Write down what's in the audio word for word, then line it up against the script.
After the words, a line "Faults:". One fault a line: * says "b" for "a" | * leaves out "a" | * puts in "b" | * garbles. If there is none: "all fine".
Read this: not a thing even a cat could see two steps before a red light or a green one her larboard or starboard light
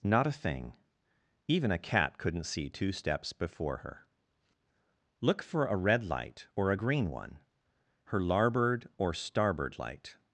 not a thing even a cat couldn't see two steps before her look for a red light or a green one her larboard or starboard light
Faults:
* says "couldn't" for "could"
* puts in "her look for"